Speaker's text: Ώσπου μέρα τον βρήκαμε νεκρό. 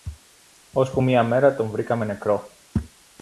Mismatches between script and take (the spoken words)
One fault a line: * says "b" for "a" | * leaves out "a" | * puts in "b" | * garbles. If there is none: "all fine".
* puts in "μια"